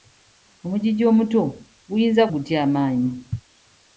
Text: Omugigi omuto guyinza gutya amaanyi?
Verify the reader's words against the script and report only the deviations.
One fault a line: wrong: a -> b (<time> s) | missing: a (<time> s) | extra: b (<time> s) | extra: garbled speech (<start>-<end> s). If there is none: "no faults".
no faults